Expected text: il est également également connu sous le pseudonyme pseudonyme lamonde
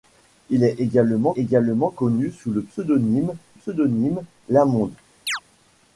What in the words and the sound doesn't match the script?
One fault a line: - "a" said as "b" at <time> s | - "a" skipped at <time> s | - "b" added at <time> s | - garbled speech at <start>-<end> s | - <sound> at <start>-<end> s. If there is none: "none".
- chirp at 5.3-5.4 s